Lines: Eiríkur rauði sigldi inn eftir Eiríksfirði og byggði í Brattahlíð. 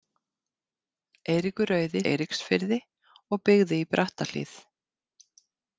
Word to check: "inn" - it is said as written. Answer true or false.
false